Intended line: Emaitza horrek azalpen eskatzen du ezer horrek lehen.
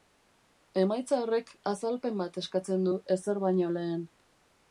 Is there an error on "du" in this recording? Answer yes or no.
no